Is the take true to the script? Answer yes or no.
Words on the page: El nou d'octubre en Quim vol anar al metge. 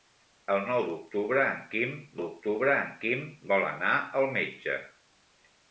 no